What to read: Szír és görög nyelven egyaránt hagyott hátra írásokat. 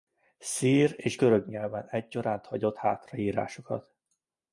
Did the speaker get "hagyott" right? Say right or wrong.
right